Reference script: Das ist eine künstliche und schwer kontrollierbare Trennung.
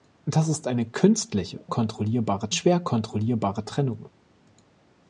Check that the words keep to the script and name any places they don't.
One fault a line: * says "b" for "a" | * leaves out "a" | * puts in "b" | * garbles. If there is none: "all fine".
* says "kontrollierbare" for "und"